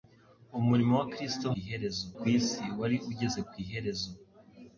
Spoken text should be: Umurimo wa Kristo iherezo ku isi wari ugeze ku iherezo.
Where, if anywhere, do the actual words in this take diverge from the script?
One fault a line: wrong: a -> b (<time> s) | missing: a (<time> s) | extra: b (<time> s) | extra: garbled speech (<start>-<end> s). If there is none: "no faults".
no faults